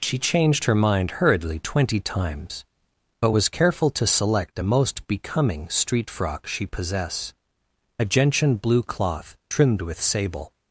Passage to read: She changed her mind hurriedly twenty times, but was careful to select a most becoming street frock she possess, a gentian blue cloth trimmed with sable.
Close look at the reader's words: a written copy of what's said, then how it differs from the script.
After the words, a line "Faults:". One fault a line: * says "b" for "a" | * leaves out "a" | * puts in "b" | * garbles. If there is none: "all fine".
She changed her mind hurriedly twenty times, but was careful to select a most becoming street frock she possess, a gentian blue cloth trimmed with sable.
Faults:
all fine